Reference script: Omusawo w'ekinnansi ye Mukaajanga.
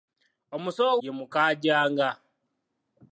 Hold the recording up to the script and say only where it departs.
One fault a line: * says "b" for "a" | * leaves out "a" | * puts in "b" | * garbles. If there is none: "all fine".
* leaves out "w'ekinnansi"